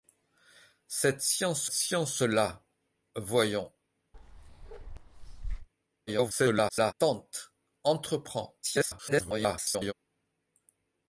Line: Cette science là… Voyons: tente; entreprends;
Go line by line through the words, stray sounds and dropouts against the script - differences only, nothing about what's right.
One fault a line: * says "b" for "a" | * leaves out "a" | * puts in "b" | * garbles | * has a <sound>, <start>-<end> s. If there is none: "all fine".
* puts in "science"
* has a bark, 4.1-5.7 s
* garbles
* garbles